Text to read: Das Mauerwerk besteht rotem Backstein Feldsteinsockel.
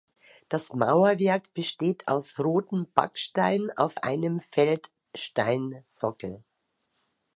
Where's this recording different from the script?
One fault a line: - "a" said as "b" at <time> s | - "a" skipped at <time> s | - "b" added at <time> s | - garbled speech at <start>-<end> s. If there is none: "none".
- "aus" added at 2.1 s
- "auf einem" added at 3.8 s